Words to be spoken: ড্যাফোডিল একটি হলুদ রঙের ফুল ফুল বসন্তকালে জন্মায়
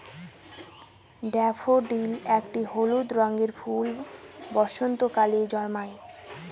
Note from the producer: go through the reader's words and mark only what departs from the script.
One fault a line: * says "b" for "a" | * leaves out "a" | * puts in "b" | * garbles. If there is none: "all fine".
* leaves out "ফুল"